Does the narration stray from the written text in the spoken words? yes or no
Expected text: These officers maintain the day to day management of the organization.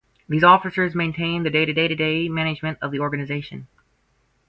yes